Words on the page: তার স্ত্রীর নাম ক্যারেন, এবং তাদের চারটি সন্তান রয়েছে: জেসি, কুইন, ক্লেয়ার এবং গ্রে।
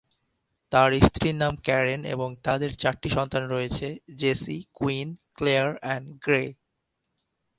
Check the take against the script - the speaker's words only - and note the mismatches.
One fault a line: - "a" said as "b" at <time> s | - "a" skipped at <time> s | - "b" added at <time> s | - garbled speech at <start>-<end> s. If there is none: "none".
none